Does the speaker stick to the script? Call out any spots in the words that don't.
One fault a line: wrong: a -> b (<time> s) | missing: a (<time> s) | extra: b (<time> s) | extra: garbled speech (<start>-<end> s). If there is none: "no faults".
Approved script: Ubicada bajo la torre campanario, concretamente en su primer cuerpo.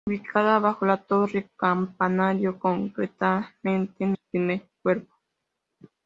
no faults